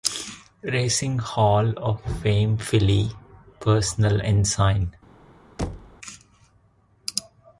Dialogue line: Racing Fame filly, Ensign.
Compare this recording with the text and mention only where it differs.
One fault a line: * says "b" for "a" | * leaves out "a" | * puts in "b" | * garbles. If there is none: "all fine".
* puts in "Hall of"
* puts in "Personal"